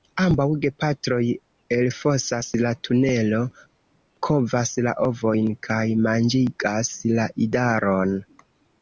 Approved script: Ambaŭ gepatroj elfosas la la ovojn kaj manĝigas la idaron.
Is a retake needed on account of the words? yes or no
yes